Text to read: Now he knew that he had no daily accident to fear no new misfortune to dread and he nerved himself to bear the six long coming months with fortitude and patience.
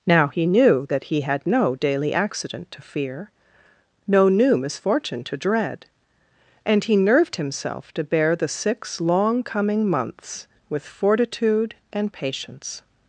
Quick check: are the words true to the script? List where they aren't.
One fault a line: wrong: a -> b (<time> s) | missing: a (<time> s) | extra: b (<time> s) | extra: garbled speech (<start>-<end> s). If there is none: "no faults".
no faults